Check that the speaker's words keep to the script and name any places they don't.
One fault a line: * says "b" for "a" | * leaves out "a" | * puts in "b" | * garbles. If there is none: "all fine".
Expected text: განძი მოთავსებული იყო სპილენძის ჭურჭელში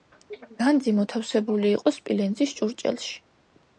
all fine